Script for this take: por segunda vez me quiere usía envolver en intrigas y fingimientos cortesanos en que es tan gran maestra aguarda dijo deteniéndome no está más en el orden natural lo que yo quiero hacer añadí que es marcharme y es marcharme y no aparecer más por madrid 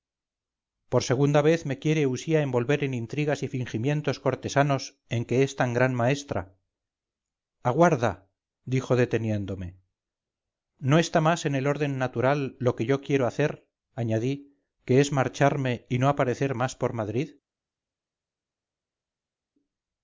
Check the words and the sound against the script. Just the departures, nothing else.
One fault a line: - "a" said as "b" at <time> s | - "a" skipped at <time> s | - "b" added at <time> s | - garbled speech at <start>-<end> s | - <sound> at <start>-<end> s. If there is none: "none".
- "es marcharme y" skipped at 16.0 s